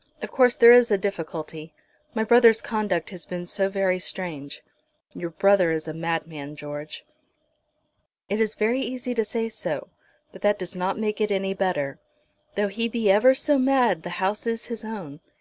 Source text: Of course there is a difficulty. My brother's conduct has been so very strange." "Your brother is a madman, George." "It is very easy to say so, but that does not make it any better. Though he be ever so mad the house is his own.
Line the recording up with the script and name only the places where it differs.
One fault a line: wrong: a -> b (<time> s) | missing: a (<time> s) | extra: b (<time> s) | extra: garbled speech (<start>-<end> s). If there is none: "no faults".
no faults